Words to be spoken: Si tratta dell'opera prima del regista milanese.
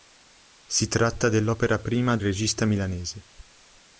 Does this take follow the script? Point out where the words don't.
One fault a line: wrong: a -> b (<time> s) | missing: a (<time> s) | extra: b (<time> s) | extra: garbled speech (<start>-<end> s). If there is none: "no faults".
missing: del (2.2 s)